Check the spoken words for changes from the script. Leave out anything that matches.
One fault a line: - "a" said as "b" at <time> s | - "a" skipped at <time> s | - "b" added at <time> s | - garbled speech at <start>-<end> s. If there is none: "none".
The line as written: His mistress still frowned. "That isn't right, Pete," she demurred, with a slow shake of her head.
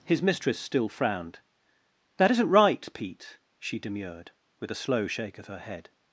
none